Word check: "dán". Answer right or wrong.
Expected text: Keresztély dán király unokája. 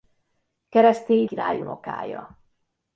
wrong